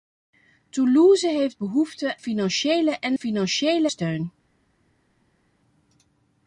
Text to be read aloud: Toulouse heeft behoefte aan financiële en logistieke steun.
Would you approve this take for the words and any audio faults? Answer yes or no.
no